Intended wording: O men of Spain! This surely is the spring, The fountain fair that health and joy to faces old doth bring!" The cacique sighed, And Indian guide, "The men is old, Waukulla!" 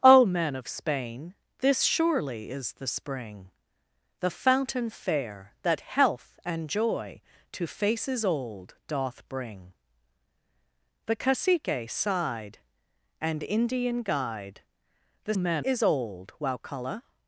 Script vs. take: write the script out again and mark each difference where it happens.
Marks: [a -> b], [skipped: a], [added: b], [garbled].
O men of Spain! This surely is the spring, The fountain fair that health and joy to faces old doth bring!" The cacique sighed, And Indian guide, "The men is old, Waukulla!"